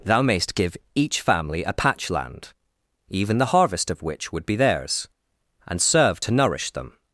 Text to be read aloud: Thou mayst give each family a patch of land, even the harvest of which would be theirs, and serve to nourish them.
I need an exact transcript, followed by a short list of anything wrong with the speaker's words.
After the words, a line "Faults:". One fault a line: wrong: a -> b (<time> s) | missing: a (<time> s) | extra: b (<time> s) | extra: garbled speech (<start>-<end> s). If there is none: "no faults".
Thou mayst give each family a patch land, even the harvest of which would be theirs, and serve to nourish them.
Faults:
missing: of (2.1 s)